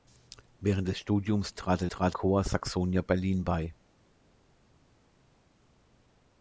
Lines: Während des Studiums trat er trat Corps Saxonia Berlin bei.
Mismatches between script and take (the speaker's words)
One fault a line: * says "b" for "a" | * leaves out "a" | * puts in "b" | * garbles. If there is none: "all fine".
all fine